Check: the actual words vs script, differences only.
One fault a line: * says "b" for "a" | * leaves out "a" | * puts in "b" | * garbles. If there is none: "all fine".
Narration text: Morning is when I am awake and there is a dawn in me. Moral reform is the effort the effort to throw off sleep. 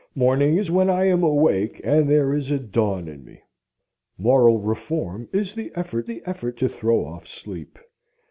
all fine